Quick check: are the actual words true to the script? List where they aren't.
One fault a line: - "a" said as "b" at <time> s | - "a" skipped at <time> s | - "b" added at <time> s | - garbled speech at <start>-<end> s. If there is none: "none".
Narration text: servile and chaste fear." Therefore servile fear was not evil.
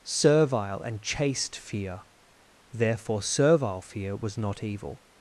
none